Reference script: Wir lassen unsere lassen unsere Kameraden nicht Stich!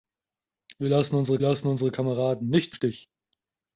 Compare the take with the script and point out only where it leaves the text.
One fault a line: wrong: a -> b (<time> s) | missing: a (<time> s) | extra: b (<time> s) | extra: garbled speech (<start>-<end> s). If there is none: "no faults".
no faults